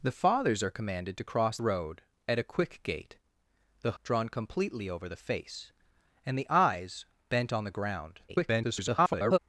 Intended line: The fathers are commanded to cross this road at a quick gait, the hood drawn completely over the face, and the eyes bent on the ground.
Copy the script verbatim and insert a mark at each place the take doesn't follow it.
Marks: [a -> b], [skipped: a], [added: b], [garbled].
The fathers are commanded to cross [skipped: this] road at a quick gait, the [skipped: hood] drawn completely over the face, and the eyes bent on the ground. [garbled]